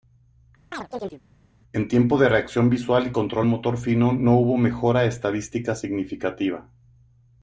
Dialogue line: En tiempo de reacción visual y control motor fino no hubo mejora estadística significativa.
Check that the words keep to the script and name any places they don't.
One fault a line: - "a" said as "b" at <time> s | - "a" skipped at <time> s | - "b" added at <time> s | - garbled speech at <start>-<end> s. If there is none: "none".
none